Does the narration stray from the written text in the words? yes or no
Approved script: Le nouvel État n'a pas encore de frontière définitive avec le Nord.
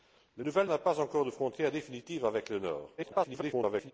yes